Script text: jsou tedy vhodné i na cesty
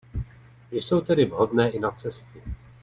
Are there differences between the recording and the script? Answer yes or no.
no